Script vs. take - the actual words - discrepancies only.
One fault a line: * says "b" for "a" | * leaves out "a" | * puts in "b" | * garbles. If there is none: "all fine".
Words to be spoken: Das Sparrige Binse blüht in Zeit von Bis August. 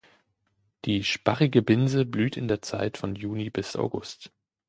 * says "Die" for "Das"
* puts in "der"
* puts in "Juni"